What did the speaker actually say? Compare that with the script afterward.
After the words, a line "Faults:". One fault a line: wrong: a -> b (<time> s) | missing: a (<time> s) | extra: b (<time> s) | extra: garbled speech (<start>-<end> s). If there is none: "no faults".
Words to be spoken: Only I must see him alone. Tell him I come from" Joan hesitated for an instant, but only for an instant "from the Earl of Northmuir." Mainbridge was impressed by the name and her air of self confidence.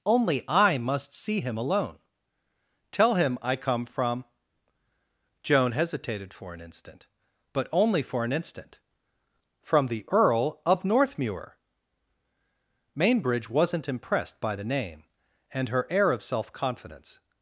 Only I must see him alone. Tell him I come from" Joan hesitated for an instant, but only for an instant "from the Earl of Northmuir." Mainbridge wasn't impressed by the name and her air of self confidence.
Faults:
wrong: was -> wasn't (13.5 s)